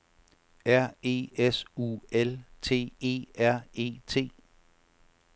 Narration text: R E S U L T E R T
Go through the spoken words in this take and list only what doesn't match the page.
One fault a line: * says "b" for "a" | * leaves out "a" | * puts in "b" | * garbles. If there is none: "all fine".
* puts in "E"